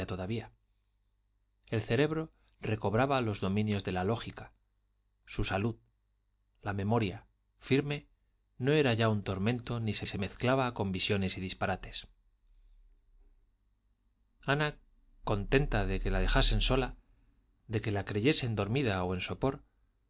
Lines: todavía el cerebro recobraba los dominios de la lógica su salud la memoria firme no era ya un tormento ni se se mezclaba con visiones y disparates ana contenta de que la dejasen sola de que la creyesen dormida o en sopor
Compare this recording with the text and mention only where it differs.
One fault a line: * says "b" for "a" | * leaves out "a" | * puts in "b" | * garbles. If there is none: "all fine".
all fine